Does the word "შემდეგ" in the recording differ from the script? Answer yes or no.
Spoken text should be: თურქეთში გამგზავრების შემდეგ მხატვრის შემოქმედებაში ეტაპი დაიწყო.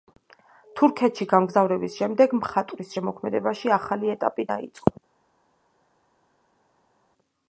no